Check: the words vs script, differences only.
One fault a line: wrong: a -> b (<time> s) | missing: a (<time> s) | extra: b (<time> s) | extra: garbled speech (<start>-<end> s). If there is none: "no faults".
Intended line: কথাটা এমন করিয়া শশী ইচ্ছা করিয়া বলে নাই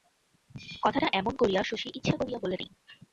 no faults